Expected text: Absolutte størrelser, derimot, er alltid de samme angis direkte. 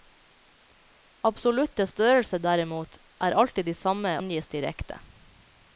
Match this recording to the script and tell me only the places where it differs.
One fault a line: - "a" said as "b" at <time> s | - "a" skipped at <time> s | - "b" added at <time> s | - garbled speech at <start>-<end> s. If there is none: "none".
none